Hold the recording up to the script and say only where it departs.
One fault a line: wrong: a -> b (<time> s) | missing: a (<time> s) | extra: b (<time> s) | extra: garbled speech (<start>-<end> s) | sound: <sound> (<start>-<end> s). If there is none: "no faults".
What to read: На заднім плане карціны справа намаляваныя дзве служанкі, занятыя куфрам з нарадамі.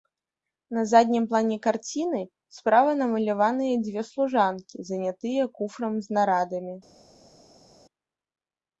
no faults